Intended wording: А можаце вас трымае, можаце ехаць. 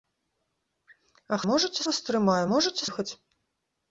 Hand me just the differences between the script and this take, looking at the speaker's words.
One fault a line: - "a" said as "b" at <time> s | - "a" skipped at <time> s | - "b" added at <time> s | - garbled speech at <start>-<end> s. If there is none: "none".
none